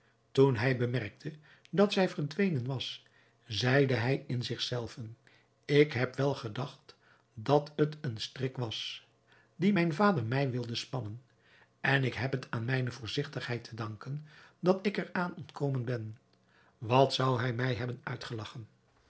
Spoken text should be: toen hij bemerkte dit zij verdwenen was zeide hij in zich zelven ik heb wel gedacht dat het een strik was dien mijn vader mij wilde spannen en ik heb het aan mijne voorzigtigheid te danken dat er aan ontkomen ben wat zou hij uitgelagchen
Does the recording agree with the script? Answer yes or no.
no